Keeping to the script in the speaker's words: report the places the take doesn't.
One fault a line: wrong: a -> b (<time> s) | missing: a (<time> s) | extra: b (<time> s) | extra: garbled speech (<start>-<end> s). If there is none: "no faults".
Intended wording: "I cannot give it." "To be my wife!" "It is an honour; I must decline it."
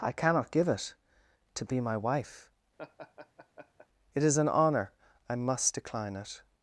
no faults